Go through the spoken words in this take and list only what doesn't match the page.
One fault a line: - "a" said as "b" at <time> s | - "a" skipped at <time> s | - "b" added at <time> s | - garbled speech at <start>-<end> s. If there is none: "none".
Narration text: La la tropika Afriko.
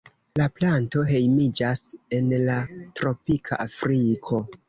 - "planto hejmiĝas en" added at 0.6 s